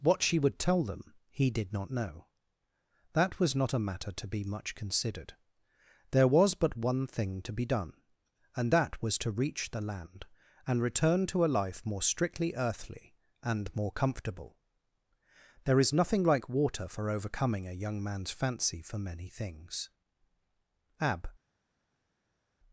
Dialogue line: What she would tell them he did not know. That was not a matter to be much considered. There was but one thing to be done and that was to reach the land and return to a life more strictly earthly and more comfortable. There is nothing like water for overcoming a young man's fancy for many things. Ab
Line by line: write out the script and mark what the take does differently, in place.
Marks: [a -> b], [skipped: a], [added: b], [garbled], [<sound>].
What she would tell them he did not know. That was not a matter to be much considered. There was but one thing to be done and that was to reach the land and return to a life more strictly earthly and more comfortable. There is nothing like water for overcoming a young man's fancy for many things. Ab